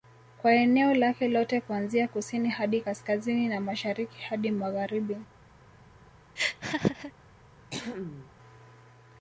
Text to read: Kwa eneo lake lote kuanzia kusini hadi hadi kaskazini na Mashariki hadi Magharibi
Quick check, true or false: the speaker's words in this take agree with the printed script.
false